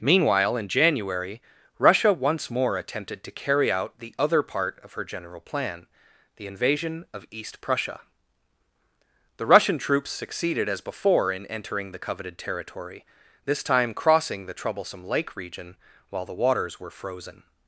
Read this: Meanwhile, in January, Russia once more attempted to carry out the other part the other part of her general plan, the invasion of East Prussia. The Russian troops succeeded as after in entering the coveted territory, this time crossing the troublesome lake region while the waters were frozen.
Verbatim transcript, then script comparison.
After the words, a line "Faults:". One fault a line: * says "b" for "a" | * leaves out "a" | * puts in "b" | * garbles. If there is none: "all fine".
Meanwhile, in January, Russia once more attempted to carry out the other part of her general plan, the invasion of East Prussia. The Russian troops succeeded as before in entering the coveted territory, this time crossing the troublesome lake region while the waters were frozen.
Faults:
* leaves out "the other part"
* says "before" for "after"